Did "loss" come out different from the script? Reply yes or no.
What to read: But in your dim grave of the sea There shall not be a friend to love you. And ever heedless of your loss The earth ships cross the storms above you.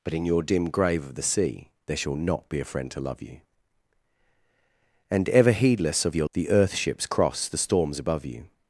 yes